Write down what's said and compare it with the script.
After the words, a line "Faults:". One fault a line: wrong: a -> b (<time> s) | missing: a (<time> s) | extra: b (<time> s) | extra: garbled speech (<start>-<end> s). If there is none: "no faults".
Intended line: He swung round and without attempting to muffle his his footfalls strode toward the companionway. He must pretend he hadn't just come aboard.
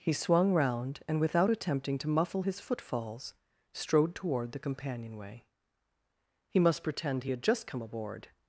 He swung round and without attempting to muffle his footfalls strode toward the companionway. He must pretend he had just come aboard.
Faults:
missing: his (2.6 s)
wrong: hadn't -> had (7.3 s)